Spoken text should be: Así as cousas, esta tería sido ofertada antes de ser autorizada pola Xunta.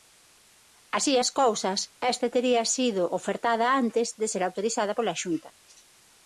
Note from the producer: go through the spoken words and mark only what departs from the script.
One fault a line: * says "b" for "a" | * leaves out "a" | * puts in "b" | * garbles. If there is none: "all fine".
all fine